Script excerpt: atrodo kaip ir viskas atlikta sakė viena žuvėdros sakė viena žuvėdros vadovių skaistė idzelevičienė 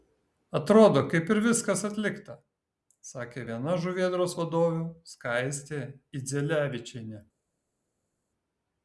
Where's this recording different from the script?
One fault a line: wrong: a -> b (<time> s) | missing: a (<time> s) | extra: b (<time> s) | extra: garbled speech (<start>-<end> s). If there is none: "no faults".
missing: sakė viena žuvėdros (4.4 s)